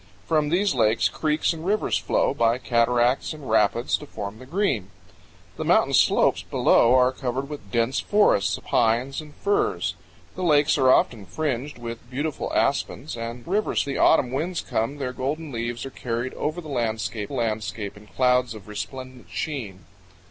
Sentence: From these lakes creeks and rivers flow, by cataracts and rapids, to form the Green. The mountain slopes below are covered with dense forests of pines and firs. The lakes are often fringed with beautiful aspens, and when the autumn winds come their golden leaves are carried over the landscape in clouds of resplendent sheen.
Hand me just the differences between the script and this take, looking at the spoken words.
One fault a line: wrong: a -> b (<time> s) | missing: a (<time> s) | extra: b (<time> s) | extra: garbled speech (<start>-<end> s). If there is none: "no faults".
missing: of (8.6 s)
wrong: when -> rivers (13.5 s)
extra: landscape (17.3 s)